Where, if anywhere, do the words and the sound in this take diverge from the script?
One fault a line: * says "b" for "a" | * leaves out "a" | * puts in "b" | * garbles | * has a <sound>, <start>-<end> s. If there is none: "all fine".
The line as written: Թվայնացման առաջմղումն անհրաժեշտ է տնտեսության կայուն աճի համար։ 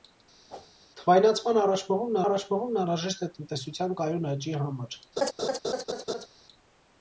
* has a whoosh, 0.5-0.7 s
* puts in "առաջմղումն"
* has a laugh, 5.2-6.3 s